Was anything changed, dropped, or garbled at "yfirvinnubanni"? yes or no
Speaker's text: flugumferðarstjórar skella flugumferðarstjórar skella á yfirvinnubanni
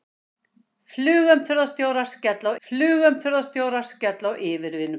no